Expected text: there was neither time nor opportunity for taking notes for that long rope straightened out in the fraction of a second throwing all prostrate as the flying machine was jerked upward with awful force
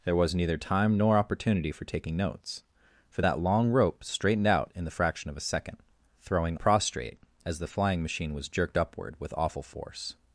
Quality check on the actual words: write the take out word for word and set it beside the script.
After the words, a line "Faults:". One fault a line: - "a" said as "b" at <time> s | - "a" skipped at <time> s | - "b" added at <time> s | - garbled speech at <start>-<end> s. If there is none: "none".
there was neither time nor opportunity for taking notes for that long rope straightened out in the fraction of a second throwing prostrate as the flying machine was jerked upward with awful force
Faults:
- "all" skipped at 6.6 s